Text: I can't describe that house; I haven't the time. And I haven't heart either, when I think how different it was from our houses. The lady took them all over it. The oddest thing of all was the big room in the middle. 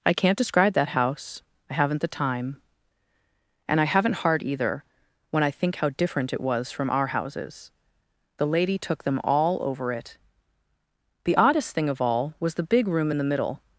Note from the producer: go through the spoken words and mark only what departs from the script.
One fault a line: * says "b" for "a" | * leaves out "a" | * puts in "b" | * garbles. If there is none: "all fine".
all fine